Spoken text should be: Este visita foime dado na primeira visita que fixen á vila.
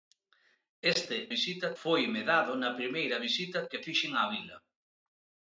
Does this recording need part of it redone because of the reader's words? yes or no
no